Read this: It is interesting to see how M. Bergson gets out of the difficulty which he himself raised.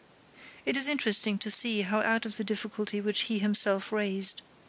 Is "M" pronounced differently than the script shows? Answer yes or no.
yes